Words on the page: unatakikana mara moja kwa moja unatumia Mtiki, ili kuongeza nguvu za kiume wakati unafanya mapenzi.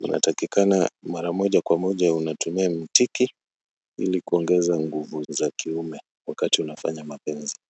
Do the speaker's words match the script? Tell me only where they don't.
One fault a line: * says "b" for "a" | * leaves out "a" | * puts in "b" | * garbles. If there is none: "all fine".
all fine